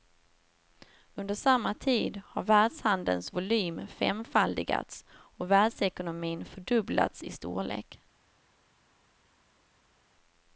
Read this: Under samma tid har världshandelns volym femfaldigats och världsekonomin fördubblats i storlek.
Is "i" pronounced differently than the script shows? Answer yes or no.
no